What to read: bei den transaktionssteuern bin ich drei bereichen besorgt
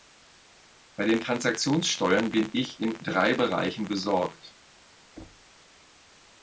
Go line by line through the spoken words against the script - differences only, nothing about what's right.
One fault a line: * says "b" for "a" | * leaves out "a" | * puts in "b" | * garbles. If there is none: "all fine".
* puts in "in"